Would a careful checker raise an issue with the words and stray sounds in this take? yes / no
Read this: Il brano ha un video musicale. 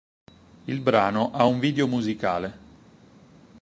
no